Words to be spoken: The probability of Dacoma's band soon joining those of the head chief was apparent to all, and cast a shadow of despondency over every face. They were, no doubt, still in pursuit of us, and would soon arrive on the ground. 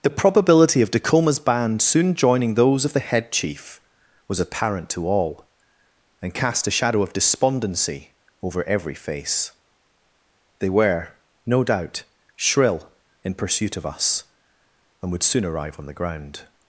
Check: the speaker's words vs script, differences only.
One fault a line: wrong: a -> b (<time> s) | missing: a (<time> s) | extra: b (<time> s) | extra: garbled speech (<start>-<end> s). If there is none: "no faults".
wrong: still -> shrill (12.3 s)